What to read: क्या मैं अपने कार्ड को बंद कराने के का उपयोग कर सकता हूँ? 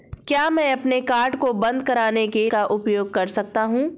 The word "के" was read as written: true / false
true